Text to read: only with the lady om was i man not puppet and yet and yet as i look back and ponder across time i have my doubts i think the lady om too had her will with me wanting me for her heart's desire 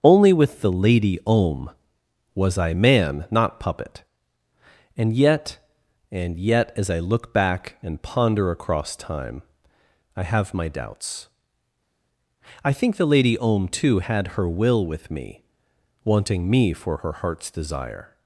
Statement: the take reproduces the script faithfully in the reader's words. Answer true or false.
true